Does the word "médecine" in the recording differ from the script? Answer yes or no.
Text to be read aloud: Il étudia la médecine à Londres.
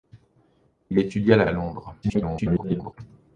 yes